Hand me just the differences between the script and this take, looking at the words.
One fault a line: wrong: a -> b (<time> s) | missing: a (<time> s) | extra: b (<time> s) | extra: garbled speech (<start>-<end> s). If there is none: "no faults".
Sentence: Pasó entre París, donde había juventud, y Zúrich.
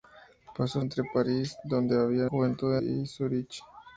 no faults